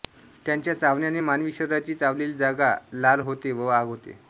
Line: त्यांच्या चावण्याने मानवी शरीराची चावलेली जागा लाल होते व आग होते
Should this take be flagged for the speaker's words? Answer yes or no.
no